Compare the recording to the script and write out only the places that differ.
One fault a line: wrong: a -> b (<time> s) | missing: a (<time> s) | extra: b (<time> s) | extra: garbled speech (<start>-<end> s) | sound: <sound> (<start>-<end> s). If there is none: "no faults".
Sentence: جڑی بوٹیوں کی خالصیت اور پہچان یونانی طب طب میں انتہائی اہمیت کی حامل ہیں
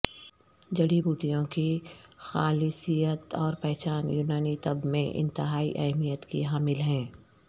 missing: طب (4.9 s)